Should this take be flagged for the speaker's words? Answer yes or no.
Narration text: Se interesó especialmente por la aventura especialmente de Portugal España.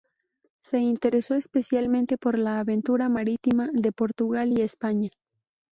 yes